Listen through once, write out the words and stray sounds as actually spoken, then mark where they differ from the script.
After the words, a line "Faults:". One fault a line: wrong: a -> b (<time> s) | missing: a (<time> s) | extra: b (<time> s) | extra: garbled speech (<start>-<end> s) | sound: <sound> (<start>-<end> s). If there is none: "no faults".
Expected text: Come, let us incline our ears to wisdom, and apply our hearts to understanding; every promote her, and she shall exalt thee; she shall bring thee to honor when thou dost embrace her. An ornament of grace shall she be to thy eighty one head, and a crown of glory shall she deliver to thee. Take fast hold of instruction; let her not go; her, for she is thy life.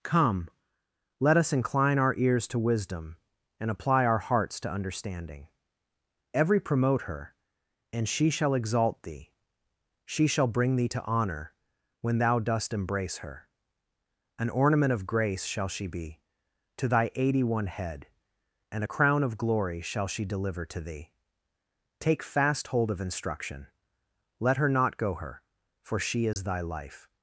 Come, let us incline our ears to wisdom, and apply our hearts to understanding; every promote her, and she shall exalt thee; she shall bring thee to honor when thou dost embrace her. An ornament of grace shall she be to thy eighty one head, and a crown of glory shall she deliver to thee. Take fast hold of instruction; let her not go; her, for she is thy life.
Faults:
sound: dropout (26.3-26.4 s)